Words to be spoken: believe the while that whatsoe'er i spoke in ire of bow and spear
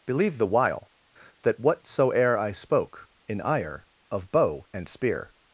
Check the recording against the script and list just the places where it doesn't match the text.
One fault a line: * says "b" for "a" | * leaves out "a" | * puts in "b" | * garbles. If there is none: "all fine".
all fine